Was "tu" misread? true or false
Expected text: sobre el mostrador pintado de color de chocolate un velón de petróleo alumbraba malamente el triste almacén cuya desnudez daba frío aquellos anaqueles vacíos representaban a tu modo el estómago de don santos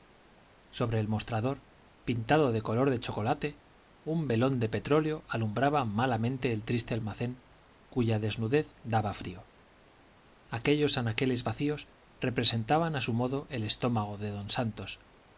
true